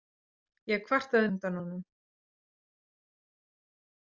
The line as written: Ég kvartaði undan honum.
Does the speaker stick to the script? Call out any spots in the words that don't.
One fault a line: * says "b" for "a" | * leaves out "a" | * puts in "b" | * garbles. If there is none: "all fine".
all fine